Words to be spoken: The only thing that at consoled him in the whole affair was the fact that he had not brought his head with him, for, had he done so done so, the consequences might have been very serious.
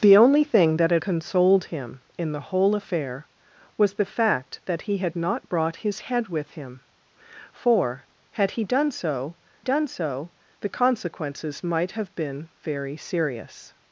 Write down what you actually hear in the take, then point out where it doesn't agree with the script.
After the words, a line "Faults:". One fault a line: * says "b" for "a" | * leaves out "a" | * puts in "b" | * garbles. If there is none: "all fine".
The only thing that at consoled him in the whole affair was the fact that he had not brought his head with him, for, had he done so done so, the consequences might have been very serious.
Faults:
all fine